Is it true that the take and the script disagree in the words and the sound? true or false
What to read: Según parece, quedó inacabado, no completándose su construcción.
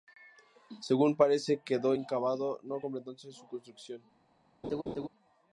true